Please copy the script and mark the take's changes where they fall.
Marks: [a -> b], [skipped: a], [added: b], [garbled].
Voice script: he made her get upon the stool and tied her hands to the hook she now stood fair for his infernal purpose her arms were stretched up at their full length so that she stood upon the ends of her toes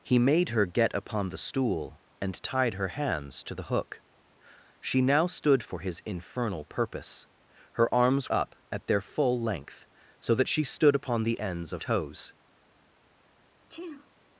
he made her get upon the stool and tied her hands to the hook she now stood [skipped: fair] for his infernal purpose her arms [skipped: were stretched] up at their full length so that she stood upon the ends of [skipped: her] toes